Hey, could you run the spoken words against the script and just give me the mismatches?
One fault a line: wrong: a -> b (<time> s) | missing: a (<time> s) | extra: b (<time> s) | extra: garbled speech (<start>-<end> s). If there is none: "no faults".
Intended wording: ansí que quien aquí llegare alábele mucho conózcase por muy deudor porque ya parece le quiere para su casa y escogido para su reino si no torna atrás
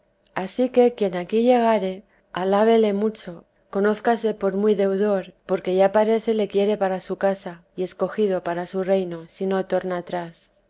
no faults